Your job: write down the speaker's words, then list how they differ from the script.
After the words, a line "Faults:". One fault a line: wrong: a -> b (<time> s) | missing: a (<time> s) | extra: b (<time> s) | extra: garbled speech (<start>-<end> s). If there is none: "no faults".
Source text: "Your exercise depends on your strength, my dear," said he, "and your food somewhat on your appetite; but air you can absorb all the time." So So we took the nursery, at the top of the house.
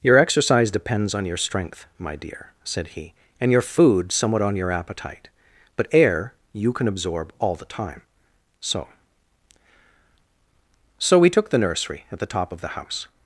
"Your exercise depends on your strength, my dear," said he, "and your food somewhat on your appetite; but air you can absorb all the time." So So we took the nursery, at the top of the house.
Faults:
no faults